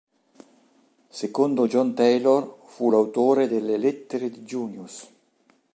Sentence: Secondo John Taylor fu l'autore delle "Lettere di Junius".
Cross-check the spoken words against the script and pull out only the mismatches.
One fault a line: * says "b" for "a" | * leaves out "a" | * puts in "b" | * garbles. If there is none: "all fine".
all fine